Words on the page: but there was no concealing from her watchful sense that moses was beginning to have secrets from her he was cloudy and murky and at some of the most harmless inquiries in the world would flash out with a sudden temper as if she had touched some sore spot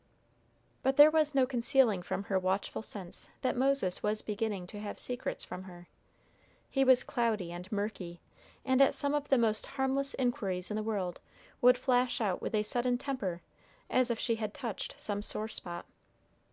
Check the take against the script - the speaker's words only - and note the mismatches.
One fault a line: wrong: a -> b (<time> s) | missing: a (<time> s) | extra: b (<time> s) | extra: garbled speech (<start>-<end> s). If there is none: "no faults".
no faults